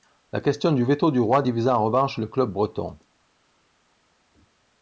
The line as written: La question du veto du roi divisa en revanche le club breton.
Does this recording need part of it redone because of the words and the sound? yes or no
no